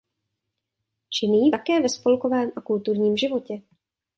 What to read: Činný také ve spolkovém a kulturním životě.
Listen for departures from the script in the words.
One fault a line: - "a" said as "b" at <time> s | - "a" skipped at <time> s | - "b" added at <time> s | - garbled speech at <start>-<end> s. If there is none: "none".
none